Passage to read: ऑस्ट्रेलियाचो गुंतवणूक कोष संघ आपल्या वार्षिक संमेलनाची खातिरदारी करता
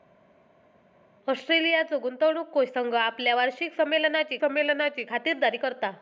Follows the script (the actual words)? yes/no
no